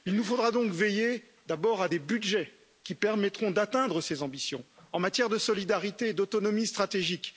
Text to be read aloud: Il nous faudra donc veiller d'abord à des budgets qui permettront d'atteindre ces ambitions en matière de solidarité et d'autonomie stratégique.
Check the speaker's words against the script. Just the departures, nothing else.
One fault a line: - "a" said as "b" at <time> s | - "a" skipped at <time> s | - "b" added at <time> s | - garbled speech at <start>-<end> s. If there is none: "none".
none